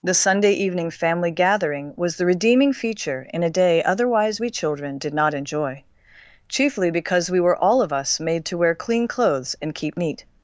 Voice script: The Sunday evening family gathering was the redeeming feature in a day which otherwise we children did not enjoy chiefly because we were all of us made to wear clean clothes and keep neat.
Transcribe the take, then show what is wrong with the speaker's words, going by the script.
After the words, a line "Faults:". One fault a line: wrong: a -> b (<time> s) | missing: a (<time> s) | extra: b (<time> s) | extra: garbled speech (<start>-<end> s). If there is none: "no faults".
The Sunday evening family gathering was the redeeming feature in a day otherwise we children did not enjoy chiefly because we were all of us made to wear clean clothes and keep neat.
Faults:
missing: which (3.8 s)